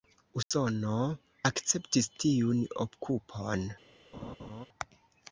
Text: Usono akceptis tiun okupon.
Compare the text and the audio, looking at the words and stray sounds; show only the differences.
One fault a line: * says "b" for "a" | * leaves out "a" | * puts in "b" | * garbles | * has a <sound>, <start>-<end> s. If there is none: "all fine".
* has a dropout, 0.4-0.5 s
* has a laugh, 4.1-4.7 s